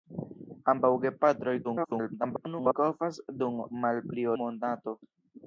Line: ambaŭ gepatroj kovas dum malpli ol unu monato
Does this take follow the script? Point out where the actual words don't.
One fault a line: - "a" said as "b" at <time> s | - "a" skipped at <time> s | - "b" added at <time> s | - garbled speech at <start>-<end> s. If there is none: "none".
- garbled speech at 1.6-2.7 s
- "ol unu" skipped at 4.3 s